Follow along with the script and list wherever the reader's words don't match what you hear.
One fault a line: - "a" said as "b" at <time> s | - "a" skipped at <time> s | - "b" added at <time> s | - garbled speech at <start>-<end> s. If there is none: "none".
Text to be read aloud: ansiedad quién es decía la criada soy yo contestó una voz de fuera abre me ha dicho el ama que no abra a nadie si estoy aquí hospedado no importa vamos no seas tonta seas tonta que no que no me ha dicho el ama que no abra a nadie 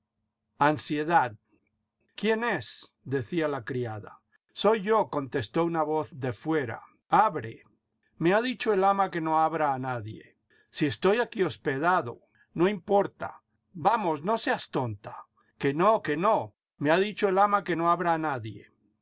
- "seas tonta" skipped at 15.2 s